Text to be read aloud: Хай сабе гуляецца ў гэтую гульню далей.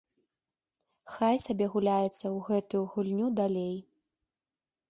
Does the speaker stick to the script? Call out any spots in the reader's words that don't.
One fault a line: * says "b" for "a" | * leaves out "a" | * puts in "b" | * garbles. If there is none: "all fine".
all fine